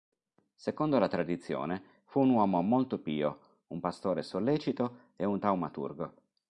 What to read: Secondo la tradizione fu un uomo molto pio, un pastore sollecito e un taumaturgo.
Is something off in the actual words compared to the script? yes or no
no